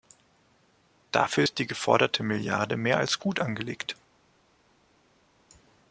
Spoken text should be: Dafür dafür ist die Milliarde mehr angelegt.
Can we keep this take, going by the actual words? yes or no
no